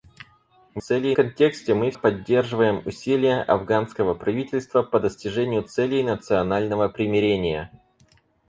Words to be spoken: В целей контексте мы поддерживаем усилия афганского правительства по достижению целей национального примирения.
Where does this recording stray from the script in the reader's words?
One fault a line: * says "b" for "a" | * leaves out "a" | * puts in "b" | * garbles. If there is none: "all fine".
all fine